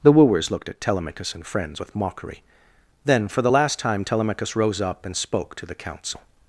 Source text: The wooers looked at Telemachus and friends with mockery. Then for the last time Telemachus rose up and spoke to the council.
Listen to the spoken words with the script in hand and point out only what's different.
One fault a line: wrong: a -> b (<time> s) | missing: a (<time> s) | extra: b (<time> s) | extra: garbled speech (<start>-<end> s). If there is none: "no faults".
no faults